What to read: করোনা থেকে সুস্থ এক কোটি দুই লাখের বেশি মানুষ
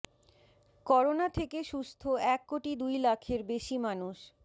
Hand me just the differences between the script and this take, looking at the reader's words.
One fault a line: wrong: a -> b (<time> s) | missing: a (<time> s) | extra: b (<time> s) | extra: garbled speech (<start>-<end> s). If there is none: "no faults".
no faults